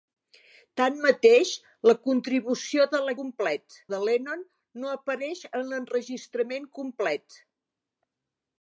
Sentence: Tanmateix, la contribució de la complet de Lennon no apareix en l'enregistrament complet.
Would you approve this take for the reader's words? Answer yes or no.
yes